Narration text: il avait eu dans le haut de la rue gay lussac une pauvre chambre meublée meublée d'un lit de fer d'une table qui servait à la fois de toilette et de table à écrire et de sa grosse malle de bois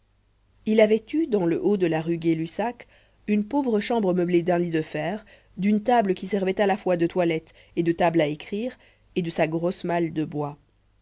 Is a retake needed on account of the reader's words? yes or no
yes